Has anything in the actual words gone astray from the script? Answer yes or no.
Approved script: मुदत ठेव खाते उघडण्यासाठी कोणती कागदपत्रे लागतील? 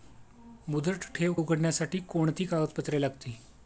yes